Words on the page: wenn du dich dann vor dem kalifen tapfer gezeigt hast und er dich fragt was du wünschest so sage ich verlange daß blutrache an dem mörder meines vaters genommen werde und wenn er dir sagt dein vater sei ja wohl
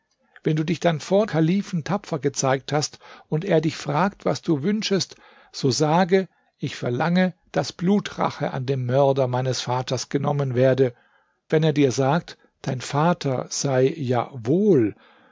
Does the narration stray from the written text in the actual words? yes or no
yes